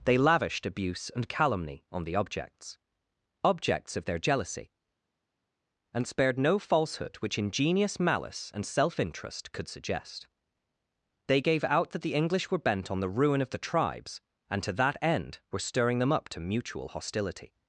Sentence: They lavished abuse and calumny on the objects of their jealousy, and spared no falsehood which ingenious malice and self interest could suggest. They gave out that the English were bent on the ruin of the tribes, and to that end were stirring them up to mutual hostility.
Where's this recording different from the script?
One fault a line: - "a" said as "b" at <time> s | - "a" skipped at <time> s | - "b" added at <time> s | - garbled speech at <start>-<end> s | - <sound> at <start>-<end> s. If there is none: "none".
- "objects" added at 3.4 s